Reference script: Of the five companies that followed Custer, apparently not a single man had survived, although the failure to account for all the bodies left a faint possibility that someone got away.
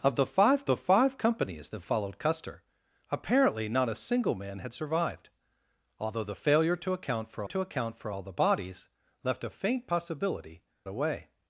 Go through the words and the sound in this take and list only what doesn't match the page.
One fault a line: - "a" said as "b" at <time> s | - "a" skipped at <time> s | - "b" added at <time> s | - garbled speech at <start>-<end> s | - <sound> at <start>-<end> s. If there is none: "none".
- "the five" added at 0.7 s
- "to account for" added at 7.4 s
- "that someone got" skipped at 10.6 s